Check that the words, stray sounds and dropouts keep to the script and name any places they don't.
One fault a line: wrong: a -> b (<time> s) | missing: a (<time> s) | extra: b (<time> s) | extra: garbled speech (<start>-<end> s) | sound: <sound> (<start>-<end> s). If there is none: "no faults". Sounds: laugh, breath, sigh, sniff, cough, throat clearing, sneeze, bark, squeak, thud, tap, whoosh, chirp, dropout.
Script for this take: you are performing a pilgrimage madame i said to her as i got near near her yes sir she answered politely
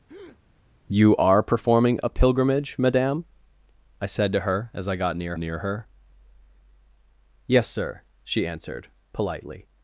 sound: breath (0.1-0.4 s)